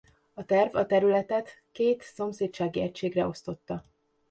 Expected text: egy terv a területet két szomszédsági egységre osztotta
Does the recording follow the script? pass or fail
fail